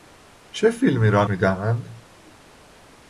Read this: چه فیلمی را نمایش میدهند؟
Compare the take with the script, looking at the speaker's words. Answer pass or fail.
fail